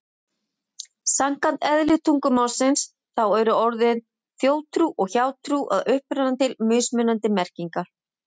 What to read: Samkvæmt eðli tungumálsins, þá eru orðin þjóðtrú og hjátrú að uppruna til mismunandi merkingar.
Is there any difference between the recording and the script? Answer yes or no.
no